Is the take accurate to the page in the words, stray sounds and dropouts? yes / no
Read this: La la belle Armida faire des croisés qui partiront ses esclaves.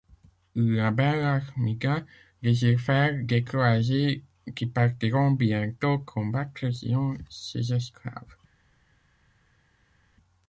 no